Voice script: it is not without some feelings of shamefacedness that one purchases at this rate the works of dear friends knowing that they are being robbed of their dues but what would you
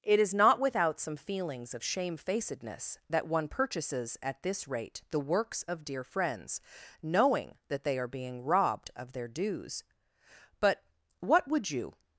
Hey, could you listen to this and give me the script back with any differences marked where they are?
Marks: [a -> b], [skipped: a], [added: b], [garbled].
it is not without some feelings of shamefacedness that one purchases at this rate the works of dear friends knowing that they are being robbed of their dues but what would you